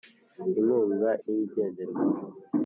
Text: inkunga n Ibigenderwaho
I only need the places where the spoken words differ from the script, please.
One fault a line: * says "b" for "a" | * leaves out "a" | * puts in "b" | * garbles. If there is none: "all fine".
all fine